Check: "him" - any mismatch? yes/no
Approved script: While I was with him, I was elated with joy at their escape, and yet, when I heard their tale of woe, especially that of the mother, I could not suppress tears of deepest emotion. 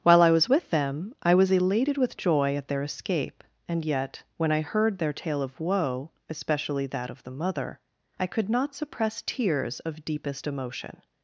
yes